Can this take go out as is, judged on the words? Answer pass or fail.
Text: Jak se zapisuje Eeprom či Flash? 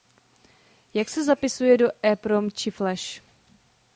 fail